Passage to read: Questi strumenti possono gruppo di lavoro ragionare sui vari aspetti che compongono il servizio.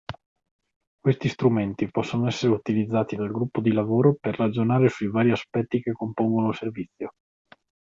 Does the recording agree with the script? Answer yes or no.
no